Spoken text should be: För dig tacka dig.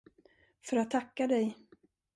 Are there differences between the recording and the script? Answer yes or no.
yes